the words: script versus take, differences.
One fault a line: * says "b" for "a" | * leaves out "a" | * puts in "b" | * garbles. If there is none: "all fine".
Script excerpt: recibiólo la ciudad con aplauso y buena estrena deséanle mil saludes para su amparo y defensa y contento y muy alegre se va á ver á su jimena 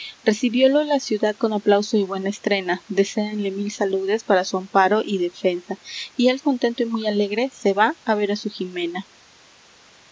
* puts in "él"